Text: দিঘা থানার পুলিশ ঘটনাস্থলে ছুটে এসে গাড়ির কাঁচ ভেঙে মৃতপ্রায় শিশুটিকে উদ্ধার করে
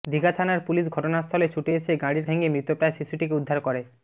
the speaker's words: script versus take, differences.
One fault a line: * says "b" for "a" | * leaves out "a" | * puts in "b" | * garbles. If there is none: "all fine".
* leaves out "কাঁচ"